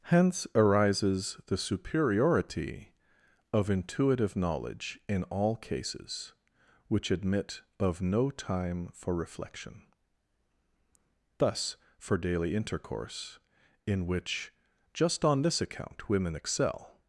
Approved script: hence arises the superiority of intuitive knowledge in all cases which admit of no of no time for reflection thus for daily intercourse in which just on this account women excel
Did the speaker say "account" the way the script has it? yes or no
yes